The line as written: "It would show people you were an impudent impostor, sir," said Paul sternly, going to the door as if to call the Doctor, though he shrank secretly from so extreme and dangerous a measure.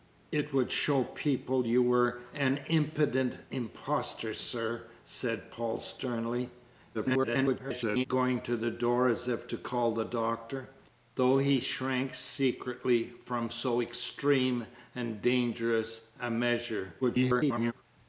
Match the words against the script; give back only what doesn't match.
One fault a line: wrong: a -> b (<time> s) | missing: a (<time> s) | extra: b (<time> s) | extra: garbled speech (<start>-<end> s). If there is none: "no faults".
extra: garbled speech (6.9-8.1 s)
extra: garbled speech (17.0-17.7 s)